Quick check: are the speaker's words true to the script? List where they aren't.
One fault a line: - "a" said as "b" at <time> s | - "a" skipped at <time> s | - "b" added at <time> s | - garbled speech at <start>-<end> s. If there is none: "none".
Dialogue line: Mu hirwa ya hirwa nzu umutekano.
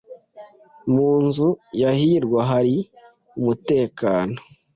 - "hirwa" said as "nzu" at 1.2 s
- "nzu" said as "hari" at 2.5 s